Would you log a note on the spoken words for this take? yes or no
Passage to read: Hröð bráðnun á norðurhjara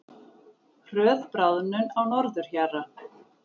no